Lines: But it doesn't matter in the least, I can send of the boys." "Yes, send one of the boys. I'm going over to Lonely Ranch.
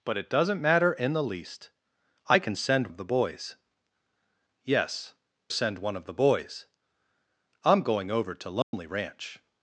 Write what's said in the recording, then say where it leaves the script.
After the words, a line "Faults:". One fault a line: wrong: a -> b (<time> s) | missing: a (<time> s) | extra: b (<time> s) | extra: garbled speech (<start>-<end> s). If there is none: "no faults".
But it doesn't matter in the least, I can send of the boys." "Yes, send one of the boys. I'm going over to Lonely Ranch.
Faults:
no faults